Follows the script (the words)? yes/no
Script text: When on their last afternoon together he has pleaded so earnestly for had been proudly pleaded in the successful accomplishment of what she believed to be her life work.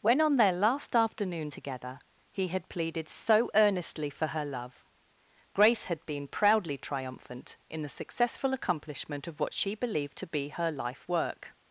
no